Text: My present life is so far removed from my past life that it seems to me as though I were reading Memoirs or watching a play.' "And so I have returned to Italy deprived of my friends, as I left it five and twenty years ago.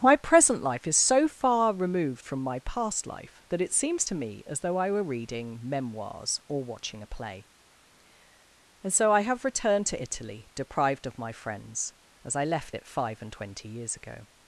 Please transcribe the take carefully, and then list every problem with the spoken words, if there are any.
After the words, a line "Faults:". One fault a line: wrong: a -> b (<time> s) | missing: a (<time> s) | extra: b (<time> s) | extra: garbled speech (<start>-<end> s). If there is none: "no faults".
My present life is so far removed from my past life that it seems to me as though I were reading Memoirs or watching a play.' "And so I have returned to Italy deprived of my friends, as I left it five and twenty years ago.
Faults:
no faults